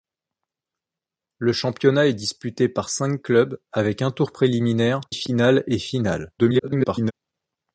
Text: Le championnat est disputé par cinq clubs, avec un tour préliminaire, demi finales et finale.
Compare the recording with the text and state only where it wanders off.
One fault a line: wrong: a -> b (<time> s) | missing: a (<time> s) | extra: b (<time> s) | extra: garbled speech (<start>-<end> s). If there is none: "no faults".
missing: demi (5.0 s)
extra: garbled speech (6.4-7.1 s)